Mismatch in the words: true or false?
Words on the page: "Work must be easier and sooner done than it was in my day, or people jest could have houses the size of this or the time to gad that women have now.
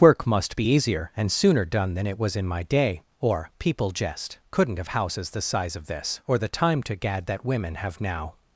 true